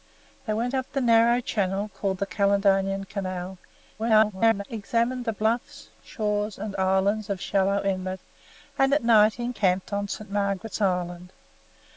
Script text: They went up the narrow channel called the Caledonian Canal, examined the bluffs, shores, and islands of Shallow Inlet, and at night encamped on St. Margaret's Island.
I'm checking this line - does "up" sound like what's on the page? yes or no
yes